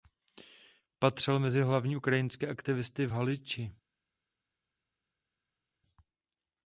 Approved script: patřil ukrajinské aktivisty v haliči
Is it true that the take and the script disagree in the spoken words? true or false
true